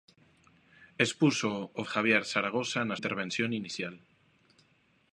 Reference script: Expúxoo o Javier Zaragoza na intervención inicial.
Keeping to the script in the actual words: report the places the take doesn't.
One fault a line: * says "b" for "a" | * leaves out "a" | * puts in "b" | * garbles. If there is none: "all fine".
all fine